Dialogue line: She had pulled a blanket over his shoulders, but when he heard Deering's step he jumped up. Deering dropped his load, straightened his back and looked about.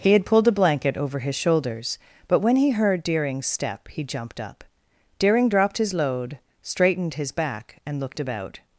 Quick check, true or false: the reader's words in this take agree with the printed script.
false